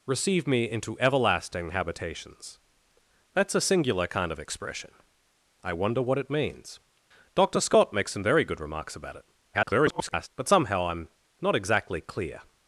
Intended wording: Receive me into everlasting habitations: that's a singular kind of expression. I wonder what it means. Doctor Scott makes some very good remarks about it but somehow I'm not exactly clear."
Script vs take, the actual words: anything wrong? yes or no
yes